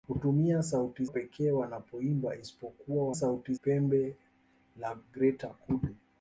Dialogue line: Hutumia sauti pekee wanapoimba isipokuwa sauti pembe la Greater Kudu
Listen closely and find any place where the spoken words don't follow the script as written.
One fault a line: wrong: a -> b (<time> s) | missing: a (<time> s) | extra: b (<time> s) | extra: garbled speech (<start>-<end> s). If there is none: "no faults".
no faults